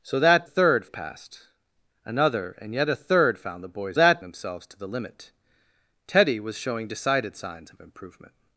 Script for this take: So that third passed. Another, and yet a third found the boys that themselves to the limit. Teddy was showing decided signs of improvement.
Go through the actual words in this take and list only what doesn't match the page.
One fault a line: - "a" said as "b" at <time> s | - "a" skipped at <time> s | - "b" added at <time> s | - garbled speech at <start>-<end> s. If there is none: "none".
none